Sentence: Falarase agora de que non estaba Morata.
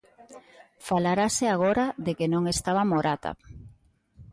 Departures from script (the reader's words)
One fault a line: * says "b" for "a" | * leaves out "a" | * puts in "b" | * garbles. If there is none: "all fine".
all fine